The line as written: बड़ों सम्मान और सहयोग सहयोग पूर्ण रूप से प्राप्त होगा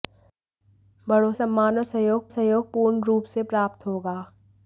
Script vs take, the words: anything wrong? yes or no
no